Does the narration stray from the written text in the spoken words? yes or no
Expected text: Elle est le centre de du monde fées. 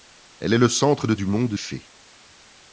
no